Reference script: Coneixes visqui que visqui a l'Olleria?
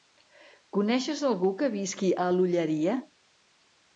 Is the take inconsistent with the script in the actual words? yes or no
yes